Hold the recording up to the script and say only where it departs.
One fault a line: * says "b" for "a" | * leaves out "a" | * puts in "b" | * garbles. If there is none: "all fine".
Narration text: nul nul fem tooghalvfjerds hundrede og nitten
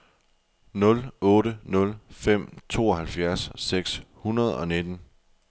* puts in "otte"
* puts in "seks"